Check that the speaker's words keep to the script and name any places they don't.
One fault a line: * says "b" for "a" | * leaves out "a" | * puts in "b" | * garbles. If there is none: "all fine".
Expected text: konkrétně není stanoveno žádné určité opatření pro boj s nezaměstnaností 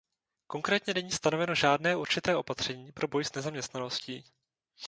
all fine